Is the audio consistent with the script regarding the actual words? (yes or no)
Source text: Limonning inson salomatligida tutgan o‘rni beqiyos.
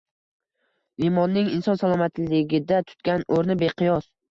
yes